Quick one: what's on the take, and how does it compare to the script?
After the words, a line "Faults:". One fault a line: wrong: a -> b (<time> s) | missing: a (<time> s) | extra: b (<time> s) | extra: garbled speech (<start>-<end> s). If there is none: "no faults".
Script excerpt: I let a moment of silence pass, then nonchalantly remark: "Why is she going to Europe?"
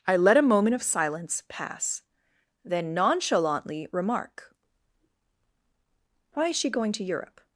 I let a moment of silence pass, then nonchalantly remark: "Why is she going to Europe?"
Faults:
no faults